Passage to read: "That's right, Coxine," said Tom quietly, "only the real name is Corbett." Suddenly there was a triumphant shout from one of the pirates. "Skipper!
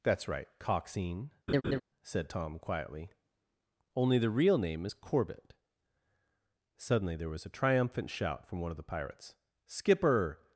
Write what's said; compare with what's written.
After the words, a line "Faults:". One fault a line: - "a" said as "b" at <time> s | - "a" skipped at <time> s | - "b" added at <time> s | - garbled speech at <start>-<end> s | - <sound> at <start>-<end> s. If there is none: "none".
"That's right, Coxine," said Tom quietly, "only the real name is Corbett." Suddenly there was a triumphant shout from one of the pirates. "Skipper!
Faults:
- laugh at 1.5-1.8 s